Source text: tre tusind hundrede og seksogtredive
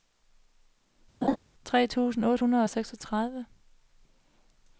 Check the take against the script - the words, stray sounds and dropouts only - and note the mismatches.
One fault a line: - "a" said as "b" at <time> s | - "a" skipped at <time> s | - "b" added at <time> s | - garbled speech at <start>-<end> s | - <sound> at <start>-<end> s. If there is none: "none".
- laugh at 1.2-1.4 s
- "otte" added at 2.2 s